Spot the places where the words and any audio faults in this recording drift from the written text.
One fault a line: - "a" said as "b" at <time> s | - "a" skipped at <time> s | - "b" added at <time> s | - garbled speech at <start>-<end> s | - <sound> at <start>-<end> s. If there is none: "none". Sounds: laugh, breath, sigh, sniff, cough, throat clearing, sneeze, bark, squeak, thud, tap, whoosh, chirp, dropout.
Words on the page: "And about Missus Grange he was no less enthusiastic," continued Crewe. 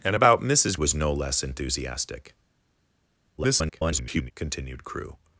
- "Grange he" skipped at 0.8 s
- garbled speech at 3.4-4.3 s